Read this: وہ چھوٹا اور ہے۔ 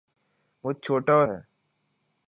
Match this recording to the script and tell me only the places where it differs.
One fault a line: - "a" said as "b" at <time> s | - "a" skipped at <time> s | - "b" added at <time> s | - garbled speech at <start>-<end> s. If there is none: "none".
none